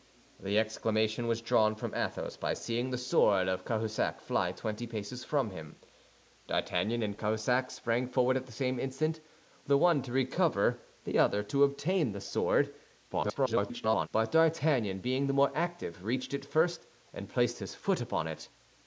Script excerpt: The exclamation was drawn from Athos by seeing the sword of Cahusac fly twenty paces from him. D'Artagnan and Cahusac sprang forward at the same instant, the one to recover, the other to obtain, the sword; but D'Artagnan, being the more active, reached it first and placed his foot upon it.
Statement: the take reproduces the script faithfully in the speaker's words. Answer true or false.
false